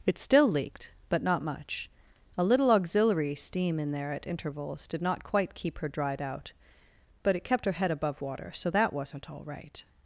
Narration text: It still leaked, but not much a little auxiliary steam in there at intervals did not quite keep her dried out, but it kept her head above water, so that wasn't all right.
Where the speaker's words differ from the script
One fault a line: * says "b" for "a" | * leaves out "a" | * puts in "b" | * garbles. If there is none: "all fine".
all fine